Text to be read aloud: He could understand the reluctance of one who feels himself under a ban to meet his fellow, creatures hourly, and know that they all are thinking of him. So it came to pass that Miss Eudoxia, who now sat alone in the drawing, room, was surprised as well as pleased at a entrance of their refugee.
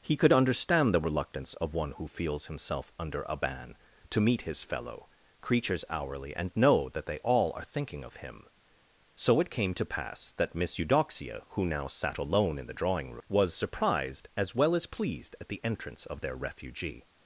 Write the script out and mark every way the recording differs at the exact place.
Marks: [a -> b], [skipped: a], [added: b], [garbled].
He could understand the reluctance of one who feels himself under a ban to meet his fellow, creatures hourly, and know that they all are thinking of him. So it came to pass that Miss Eudoxia, who now sat alone in the drawing, room, was surprised as well as pleased at [a -> the] entrance of their refugee.